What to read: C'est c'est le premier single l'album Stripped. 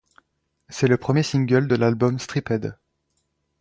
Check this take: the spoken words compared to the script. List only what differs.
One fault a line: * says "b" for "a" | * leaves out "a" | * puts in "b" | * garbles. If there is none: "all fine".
* leaves out "c'est"
* puts in "de"